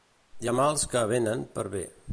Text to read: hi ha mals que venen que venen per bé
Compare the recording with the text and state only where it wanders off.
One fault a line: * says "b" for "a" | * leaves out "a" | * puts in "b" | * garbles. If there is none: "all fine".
* leaves out "que venen"